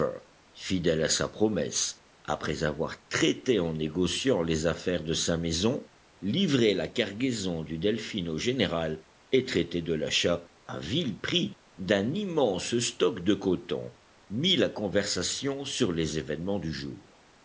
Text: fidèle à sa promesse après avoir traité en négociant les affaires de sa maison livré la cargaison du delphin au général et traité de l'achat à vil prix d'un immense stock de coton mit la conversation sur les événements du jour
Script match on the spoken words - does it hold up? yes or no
yes